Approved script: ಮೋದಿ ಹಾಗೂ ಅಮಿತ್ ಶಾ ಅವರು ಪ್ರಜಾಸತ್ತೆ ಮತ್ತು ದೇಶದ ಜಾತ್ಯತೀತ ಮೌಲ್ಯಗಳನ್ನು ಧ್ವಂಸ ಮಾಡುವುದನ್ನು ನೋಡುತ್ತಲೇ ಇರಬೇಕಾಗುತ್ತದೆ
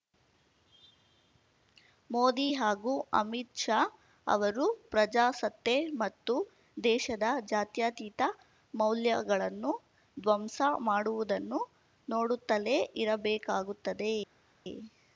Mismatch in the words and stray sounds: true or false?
false